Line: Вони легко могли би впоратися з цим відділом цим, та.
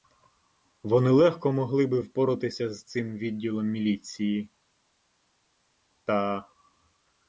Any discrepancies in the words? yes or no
yes